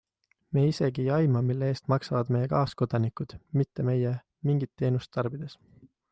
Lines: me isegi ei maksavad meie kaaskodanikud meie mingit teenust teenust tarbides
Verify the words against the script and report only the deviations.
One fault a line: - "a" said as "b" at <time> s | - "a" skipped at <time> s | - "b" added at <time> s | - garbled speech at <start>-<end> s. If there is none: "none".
- "aima mille eest" added at 1.2 s
- "mitte" added at 3.6 s
- "teenust" skipped at 5.1 s